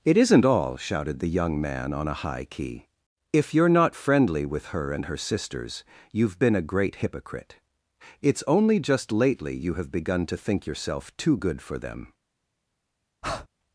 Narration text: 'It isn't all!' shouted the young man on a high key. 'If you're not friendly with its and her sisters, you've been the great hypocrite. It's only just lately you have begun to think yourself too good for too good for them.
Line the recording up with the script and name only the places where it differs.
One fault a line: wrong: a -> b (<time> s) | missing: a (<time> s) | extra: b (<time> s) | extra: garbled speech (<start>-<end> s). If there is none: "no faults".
wrong: its -> her (4.7 s)
wrong: the -> a (6.5 s)
missing: too good for (11.8 s)